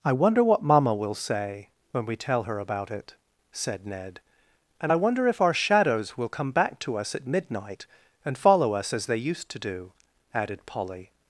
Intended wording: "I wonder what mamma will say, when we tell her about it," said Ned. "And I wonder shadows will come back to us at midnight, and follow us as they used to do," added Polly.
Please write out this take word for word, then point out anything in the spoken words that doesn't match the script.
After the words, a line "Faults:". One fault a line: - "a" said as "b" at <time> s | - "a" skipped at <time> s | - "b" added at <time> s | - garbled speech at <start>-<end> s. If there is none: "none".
"I wonder what mamma will say, when we tell her about it," said Ned. "And I wonder if our shadows will come back to us at midnight, and follow us as they used to do," added Polly.
Faults:
- "if our" added at 5.3 s